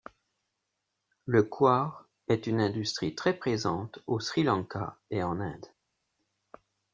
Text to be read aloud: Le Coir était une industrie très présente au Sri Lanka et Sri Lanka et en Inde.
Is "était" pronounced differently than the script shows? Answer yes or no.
yes